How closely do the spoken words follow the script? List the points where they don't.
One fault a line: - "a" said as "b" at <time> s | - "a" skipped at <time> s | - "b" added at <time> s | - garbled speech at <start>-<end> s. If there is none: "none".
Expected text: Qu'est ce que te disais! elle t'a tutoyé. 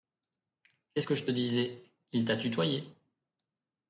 - "je" added at 1.1 s
- "elle" said as "il" at 2.1 s